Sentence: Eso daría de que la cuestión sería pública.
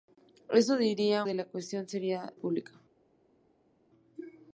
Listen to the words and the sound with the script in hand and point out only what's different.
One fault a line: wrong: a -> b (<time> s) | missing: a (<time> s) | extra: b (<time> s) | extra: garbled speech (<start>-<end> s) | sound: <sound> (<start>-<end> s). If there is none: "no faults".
no faults